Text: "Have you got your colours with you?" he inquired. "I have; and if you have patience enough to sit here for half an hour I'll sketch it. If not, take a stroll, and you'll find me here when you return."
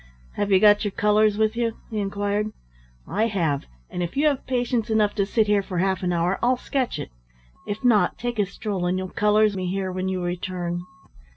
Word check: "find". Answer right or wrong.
wrong